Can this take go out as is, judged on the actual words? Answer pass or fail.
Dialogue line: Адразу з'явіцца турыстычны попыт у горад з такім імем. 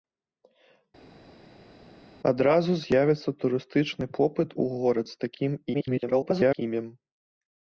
fail